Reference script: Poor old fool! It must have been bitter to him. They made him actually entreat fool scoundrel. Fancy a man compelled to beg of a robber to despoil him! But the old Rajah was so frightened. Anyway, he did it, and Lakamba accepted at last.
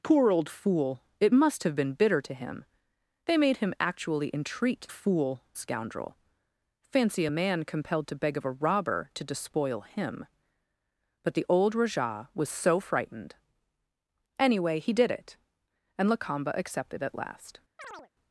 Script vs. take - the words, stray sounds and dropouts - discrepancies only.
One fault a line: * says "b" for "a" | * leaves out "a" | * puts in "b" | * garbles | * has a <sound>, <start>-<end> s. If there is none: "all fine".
* has a chirp, 17.8-18.1 s